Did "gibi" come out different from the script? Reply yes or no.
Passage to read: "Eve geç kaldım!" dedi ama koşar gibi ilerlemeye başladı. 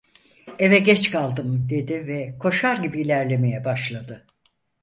no